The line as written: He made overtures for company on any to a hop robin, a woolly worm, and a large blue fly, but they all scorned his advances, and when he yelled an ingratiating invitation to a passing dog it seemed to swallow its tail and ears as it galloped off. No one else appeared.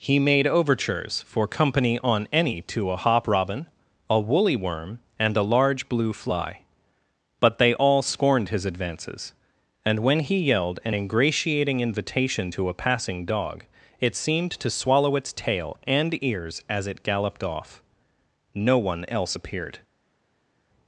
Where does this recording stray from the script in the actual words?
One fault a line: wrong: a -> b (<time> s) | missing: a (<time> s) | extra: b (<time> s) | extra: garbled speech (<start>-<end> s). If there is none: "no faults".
no faults